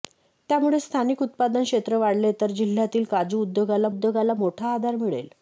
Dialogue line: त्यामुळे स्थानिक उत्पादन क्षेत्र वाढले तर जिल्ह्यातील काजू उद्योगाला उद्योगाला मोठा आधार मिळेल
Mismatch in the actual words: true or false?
false